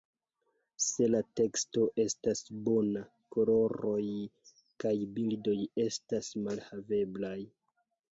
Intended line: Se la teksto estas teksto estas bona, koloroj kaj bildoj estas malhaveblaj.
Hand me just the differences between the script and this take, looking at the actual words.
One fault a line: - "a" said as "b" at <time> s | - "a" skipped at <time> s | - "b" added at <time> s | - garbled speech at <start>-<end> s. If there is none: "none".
- "teksto estas" skipped at 2.4 s